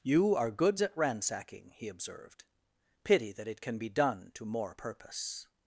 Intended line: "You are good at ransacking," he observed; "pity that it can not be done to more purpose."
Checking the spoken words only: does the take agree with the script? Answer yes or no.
no